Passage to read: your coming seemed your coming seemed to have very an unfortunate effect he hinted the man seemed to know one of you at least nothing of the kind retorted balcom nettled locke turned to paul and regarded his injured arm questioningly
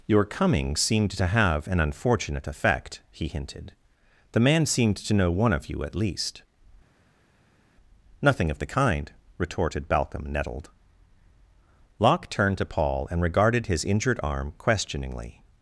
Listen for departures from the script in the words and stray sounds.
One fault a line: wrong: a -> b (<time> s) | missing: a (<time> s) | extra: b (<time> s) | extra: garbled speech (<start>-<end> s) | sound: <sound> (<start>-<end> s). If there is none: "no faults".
missing: your coming seemed (1.1 s)
missing: very (1.7 s)